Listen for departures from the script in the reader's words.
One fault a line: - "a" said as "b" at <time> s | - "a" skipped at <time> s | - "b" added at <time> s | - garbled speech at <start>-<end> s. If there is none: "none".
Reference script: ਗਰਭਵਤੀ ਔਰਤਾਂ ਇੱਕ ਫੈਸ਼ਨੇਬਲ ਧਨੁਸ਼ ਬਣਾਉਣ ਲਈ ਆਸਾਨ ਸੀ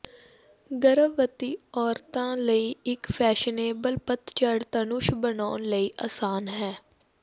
- "ਲਈ" added at 2.4 s
- "ਪਤਝੜ" added at 4.1 s
- "ਸੀ" said as "ਹੈ" at 6.5 s